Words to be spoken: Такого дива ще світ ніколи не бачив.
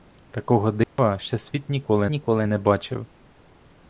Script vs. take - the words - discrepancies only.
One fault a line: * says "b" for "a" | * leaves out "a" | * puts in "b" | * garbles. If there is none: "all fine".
* puts in "ніколи"